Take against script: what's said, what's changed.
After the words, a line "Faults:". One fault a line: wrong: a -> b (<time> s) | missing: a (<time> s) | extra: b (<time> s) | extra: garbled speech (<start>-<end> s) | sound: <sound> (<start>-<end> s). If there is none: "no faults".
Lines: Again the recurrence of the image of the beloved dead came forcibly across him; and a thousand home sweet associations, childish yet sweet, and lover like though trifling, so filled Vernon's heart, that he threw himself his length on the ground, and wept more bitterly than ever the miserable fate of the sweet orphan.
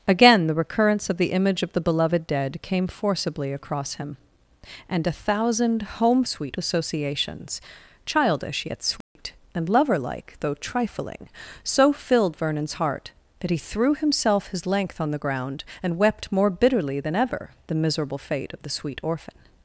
Again the recurrence of the image of the beloved dead came forcibly across him; and a thousand home sweet associations, childish yet sweet, and lover like though trifling, so filled Vernon's heart, that he threw himself his length on the ground, and wept more bitterly than ever the miserable fate of the sweet orphan.
Faults:
sound: dropout (9.0-9.2 s)